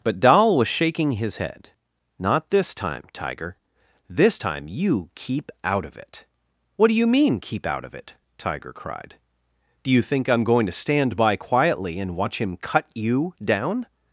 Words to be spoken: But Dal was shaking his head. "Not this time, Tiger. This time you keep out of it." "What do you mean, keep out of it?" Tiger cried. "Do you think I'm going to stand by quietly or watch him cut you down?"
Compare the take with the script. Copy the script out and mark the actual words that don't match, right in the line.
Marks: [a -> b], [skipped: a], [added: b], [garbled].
But Dal was shaking his head. "Not this time, Tiger. This time you keep out of it." "What do you mean, keep out of it?" Tiger cried. "Do you think I'm going to stand by quietly [or -> and] watch him cut you down?"